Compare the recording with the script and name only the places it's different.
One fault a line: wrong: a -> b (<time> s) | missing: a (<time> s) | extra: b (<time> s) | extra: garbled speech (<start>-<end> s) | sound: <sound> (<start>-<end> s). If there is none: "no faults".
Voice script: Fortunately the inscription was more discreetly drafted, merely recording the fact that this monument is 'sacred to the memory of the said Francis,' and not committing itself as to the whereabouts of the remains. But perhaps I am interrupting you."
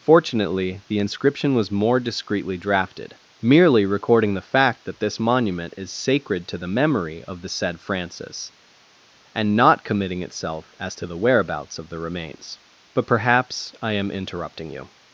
no faults